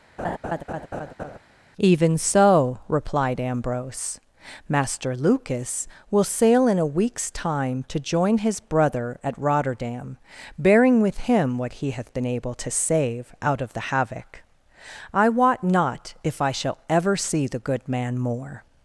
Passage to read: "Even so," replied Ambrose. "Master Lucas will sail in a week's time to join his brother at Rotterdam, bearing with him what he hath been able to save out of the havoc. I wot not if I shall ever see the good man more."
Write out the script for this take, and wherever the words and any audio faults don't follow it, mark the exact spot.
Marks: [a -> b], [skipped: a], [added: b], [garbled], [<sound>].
[laugh] "Even so," replied Ambrose. "Master Lucas will sail in a week's time to join his brother at Rotterdam, bearing with him what he hath been able to save out of the havoc. I wot not if I shall ever see the good man more."